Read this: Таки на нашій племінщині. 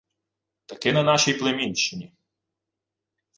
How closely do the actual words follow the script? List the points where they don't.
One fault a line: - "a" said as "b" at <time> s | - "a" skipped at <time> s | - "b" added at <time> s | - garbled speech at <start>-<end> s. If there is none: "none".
none